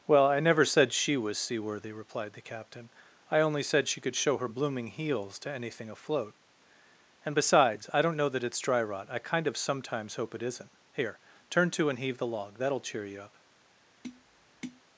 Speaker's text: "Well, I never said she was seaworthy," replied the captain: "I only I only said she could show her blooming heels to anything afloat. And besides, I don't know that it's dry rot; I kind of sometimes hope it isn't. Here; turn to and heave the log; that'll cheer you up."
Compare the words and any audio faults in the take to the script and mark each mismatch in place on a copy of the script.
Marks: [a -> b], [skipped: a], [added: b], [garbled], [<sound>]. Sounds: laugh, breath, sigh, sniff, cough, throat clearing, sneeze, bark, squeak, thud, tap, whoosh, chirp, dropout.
"Well, I never said she was seaworthy," replied the captain: "I only [skipped: I only] said she could show her blooming heels to anything afloat. And besides, I don't know that it's dry rot; I kind of sometimes hope it isn't. Here; turn to and heave the log; that'll cheer you up." [tap]